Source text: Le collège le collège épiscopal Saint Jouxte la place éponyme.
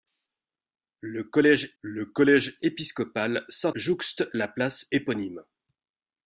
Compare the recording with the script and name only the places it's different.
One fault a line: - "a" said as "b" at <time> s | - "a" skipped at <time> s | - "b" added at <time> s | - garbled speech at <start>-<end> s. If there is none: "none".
none